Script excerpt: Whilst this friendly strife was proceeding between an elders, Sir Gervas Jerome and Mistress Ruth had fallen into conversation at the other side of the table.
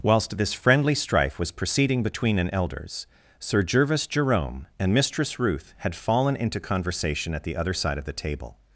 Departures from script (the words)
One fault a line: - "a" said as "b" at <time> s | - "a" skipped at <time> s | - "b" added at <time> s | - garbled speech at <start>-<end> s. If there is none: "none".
none